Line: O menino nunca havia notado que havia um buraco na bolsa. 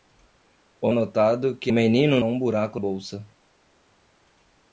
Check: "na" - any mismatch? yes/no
yes